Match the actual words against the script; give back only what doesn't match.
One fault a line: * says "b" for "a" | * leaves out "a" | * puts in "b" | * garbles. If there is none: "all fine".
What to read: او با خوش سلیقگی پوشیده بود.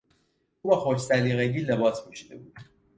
* puts in "لباس"